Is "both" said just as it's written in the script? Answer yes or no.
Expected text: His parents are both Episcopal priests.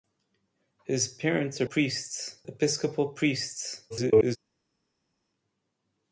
no